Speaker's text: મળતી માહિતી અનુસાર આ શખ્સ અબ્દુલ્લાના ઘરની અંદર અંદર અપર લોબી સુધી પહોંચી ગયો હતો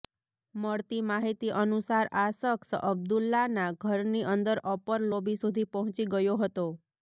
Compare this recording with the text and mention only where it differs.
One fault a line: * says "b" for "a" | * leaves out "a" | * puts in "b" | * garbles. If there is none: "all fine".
* leaves out "અંદર"